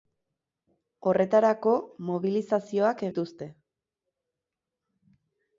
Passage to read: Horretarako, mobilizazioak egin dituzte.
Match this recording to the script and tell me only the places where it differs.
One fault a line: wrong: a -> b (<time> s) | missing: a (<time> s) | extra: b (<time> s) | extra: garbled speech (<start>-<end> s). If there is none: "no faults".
missing: egin (3.1 s)